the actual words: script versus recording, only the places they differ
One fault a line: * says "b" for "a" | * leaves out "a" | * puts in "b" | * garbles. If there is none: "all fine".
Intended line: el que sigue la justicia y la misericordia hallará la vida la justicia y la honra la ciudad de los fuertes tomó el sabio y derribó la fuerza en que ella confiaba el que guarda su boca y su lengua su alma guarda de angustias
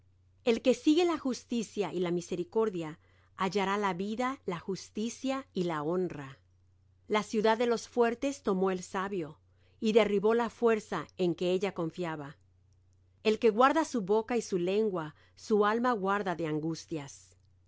all fine